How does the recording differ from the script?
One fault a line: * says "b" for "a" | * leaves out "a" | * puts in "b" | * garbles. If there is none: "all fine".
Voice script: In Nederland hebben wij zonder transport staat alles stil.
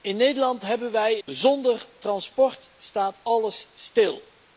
all fine